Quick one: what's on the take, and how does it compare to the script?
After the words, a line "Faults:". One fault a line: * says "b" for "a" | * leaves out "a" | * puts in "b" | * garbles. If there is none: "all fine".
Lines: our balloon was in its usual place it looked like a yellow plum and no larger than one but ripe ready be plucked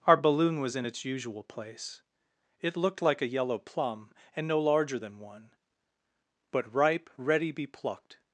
our balloon was in its usual place it looked like a yellow plum and no larger than one but ripe ready be plucked
Faults:
all fine